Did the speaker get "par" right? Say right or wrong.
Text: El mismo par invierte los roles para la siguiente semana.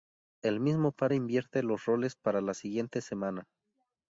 right